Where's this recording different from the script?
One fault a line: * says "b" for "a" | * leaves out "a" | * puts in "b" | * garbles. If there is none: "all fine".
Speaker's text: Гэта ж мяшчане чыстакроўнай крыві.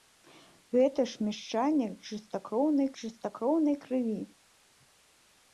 * puts in "чыстакроўнай"